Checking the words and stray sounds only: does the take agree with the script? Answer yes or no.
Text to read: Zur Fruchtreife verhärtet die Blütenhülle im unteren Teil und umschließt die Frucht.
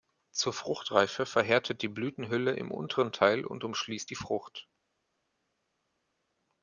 yes